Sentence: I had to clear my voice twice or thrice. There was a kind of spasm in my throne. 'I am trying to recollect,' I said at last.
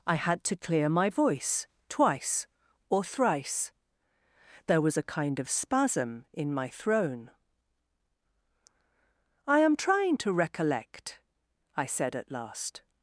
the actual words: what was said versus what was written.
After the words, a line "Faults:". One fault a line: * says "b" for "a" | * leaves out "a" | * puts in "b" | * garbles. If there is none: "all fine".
I had to clear my voice twice or thrice. There was a kind of spasm in my throne. 'I am trying to recollect,' I said at last.
Faults:
all fine